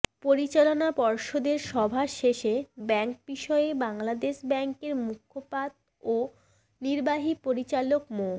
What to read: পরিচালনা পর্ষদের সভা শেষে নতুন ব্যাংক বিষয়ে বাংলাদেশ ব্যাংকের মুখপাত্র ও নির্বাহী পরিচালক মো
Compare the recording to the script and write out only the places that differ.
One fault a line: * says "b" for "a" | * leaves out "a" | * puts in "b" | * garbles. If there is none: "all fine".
* leaves out "নতুন"